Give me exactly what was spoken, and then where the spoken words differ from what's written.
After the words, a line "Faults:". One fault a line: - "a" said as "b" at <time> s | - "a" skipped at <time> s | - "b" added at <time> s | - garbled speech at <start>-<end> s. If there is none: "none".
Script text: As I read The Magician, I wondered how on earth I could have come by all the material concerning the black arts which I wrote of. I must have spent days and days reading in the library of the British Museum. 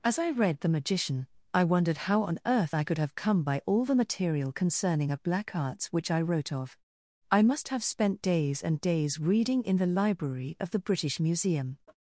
As I read The Magician, I wondered how on earth I could have come by all the material concerning a black arts which I wrote of. I must have spent days and days reading in the library of the British Museum.
Faults:
- "the" said as "a" at 5.1 s